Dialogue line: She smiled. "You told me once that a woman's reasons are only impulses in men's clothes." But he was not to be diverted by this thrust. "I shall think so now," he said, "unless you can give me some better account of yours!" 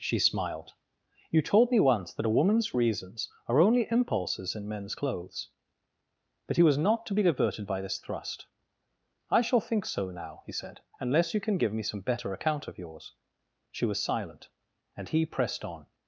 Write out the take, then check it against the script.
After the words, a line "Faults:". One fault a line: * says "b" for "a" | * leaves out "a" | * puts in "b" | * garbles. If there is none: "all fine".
She smiled. "You told me once that a woman's reasons are only impulses in men's clothes." But he was not to be diverted by this thrust. "I shall think so now," he said, "unless you can give me some better account of yours!" She was silent, and he pressed on
Faults:
* puts in "She was silent and he pressed on"